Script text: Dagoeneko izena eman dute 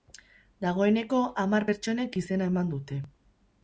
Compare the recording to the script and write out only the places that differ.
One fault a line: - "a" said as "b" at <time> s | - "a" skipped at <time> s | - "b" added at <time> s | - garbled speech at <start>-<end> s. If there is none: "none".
- "hamar pertsonek" added at 1.4 s